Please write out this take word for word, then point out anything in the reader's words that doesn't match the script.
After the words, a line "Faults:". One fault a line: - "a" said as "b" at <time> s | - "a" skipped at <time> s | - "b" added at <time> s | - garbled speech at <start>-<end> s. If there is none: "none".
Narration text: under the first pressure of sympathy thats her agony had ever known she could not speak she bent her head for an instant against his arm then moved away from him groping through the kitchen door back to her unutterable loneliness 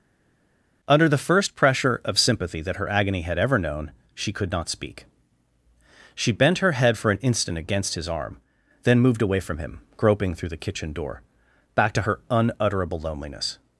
under the first pressure of sympathy that her agony had ever known she could not speak she bent her head for an instant against his arm then moved away from him groping through the kitchen door back to her unutterable loneliness
Faults:
- "thats" said as "that" at 2.6 s